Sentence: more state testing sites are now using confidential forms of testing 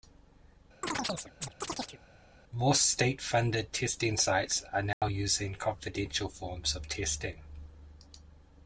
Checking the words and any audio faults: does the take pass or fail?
fail